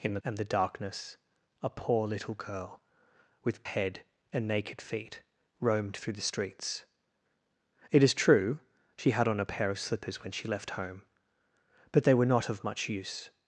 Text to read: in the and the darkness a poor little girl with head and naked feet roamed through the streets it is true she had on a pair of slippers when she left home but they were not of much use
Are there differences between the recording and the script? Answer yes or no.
no